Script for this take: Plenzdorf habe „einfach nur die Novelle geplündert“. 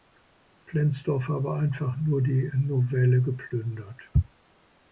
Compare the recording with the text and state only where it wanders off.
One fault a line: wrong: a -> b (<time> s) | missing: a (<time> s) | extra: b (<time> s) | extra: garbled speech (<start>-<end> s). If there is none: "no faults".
no faults